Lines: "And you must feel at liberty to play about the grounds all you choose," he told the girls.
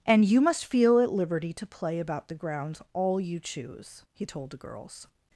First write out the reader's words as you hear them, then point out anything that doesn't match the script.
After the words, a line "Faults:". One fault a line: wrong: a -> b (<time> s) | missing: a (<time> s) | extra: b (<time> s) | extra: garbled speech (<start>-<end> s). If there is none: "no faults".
"And you must feel at liberty to play about the grounds all you choose," he told the girls.
Faults:
no faults